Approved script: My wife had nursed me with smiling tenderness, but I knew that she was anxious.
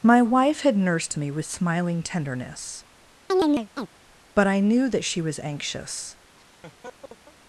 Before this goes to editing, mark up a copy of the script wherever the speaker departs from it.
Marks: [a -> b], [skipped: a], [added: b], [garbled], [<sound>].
My wife had nursed me with smiling tenderness, [chirp] but I knew that she was anxious. [laugh]